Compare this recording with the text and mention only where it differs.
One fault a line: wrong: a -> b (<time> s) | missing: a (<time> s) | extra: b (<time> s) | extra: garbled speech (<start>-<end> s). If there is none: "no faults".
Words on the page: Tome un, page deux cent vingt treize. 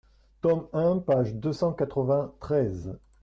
extra: quatre (1.7 s)